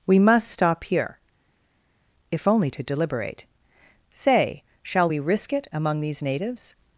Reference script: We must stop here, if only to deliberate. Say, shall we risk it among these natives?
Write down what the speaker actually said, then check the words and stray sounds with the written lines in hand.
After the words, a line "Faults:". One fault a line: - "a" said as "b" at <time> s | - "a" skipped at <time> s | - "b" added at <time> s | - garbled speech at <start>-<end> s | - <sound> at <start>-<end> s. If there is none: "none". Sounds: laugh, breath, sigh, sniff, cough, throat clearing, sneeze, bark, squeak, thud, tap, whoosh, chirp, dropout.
We must stop here, if only to deliberate. Say, shall we risk it among these natives?
Faults:
none